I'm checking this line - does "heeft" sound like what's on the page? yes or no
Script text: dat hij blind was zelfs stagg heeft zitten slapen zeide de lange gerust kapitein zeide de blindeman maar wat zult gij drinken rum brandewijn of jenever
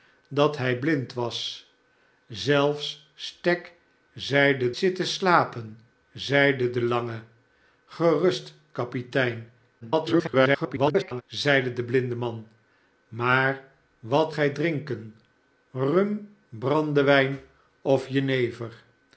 no